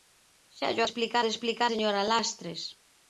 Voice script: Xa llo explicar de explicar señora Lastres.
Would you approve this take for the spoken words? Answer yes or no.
yes